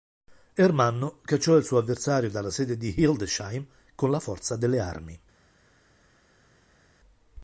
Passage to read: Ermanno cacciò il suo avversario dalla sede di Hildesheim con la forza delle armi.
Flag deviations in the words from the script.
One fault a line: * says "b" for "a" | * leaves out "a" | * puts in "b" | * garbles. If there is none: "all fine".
all fine